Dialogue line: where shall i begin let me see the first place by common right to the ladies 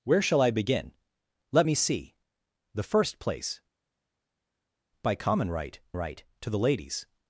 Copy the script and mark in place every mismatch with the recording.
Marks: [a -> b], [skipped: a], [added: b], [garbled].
where shall i begin let me see the first place by common right [added: right] to the ladies